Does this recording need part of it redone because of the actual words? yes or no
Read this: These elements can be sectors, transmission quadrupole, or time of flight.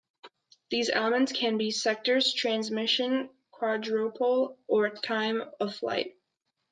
no